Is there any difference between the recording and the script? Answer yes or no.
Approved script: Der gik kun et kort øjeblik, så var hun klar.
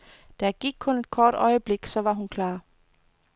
no